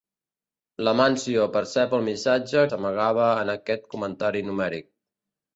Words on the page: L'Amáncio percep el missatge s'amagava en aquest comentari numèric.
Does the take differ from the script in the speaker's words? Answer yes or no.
no